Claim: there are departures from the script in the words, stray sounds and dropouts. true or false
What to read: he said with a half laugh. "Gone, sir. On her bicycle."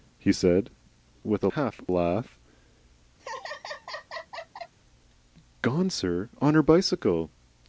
true